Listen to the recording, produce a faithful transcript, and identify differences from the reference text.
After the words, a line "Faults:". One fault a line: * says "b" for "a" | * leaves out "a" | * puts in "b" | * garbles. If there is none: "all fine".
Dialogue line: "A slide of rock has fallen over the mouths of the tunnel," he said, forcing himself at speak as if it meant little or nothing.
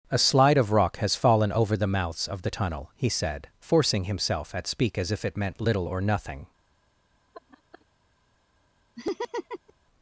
"A slide of rock has fallen over the mouths of the tunnel," he said, forcing himself at speak as if it meant little or nothing.
Faults:
all fine